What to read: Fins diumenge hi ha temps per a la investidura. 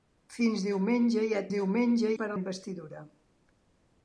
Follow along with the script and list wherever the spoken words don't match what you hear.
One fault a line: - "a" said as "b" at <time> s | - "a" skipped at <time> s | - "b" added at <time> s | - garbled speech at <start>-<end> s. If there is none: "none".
- "temps" said as "diumenge" at 1.5 s
- "la" skipped at 2.4 s